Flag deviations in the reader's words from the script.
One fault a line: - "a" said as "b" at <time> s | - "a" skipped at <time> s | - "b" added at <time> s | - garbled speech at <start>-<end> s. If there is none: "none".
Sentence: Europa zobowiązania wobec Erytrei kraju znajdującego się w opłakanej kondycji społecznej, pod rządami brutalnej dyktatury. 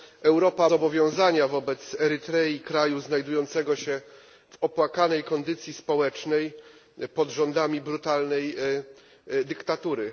none